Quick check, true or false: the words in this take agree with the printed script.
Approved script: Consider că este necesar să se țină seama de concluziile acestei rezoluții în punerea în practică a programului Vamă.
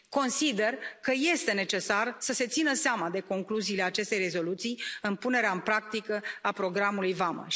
true